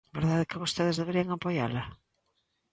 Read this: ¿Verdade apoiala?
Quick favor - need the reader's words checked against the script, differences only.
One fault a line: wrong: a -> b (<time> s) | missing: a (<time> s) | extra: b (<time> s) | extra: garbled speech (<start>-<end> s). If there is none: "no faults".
extra: que vostedes deberían (0.5 s)